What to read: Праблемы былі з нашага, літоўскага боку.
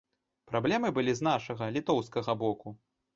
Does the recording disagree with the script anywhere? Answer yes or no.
no